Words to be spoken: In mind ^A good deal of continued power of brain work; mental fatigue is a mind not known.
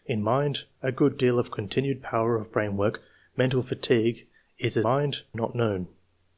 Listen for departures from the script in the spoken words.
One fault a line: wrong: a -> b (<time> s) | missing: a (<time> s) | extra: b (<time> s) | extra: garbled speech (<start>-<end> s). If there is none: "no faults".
no faults